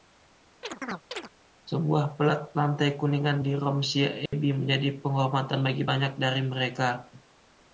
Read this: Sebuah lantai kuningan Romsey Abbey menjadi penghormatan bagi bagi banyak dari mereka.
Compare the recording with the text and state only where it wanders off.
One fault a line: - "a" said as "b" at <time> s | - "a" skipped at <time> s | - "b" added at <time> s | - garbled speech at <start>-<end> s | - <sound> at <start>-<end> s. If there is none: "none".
- chirp at 0.6-1.3 s
- "pelat" added at 2.2 s
- "di" added at 3.4 s
- dropout at 4.3-4.3 s
- "bagi" skipped at 5.9 s